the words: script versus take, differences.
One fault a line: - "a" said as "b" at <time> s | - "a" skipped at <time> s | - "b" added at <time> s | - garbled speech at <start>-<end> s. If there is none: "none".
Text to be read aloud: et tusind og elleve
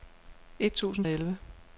none